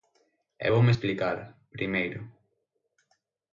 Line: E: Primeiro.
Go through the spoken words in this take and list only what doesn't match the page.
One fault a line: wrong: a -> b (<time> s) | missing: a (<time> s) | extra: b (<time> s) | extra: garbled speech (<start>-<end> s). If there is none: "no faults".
extra: voume explicar (0.7 s)